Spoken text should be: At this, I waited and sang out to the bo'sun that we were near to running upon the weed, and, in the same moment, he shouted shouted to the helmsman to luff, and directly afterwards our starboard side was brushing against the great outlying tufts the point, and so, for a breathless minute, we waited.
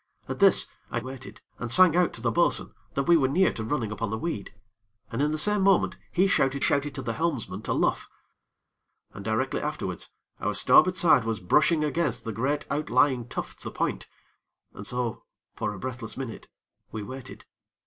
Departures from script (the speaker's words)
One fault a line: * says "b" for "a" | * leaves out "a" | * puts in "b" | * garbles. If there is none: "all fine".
all fine